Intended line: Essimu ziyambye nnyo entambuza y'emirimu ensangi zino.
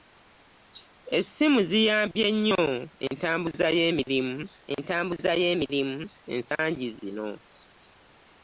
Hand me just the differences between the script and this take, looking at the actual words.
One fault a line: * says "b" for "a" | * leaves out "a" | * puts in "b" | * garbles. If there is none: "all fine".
* puts in "entambuza y'emirimu"